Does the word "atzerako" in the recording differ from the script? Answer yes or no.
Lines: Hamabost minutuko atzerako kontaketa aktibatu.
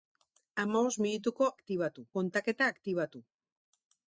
yes